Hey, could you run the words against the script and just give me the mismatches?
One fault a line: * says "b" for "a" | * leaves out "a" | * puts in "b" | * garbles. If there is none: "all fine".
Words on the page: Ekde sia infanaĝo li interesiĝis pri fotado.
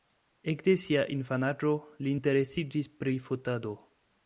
all fine